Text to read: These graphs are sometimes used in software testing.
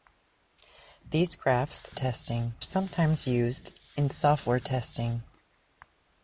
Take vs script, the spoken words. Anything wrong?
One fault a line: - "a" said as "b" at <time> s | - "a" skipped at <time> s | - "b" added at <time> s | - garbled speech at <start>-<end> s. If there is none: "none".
- "are" said as "testing" at 1.9 s